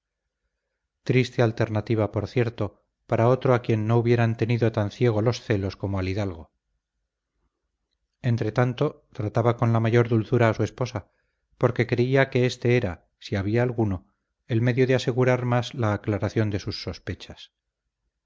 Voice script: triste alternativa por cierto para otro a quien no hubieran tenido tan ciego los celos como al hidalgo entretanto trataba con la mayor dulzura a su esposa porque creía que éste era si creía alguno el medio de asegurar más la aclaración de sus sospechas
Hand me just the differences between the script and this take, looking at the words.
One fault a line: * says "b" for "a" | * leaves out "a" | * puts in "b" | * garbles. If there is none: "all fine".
* says "había" for "creía"